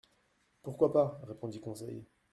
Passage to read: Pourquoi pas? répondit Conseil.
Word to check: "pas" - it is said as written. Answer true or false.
true